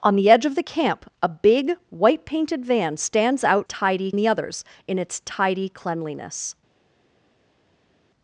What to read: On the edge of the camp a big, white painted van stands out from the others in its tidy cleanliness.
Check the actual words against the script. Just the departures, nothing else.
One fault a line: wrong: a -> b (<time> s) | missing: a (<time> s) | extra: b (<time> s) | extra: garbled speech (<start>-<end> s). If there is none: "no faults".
wrong: from -> tidy (3.6 s)